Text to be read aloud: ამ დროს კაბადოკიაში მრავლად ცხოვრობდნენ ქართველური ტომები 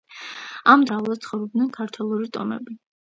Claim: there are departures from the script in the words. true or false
true